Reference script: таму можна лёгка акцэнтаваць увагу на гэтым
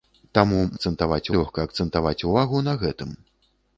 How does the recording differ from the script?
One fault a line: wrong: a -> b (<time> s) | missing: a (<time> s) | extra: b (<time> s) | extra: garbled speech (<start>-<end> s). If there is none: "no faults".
wrong: можна -> акцэнтаваць (0.8 s)